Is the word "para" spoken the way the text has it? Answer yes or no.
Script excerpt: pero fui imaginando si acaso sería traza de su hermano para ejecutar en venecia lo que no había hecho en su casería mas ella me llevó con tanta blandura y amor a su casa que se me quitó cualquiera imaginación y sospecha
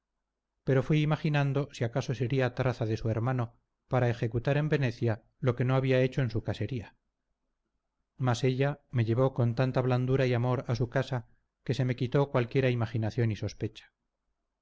yes